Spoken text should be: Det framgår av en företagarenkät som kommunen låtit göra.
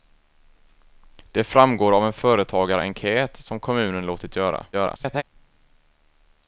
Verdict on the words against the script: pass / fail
fail